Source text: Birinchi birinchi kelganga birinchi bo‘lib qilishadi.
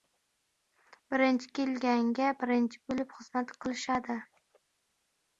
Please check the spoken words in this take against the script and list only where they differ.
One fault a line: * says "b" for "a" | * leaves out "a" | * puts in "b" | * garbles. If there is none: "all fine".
* leaves out "birinchi"
* puts in "xizmat"